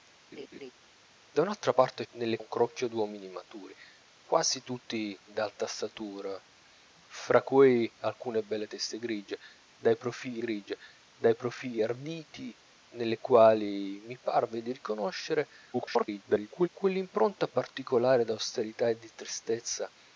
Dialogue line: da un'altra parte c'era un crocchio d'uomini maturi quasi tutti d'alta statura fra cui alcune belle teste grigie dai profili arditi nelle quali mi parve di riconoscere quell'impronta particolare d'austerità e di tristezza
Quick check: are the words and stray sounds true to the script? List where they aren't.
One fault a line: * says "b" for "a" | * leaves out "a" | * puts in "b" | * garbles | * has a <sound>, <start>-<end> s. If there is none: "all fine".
* has a laugh, 0.3-0.7 s
* says "nelle" for "c'era"
* puts in "grigie dai profili"
* garbles